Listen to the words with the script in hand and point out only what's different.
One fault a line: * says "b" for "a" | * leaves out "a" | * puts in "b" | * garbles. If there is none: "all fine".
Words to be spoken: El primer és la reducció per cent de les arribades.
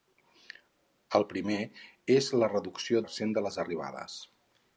all fine